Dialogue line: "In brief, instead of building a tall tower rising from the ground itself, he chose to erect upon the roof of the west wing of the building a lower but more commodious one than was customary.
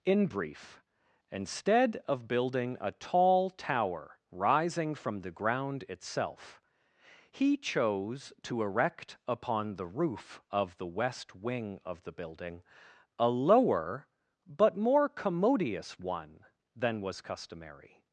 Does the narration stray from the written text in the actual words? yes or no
no